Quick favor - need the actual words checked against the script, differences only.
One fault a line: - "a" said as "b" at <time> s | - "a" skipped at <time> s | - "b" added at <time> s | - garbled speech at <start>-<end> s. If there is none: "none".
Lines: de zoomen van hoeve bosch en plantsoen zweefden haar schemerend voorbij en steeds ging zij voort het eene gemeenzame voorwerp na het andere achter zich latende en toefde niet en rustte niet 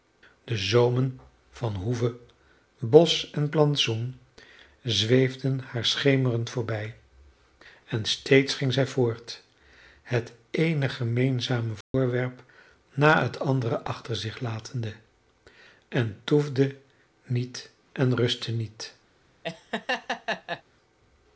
none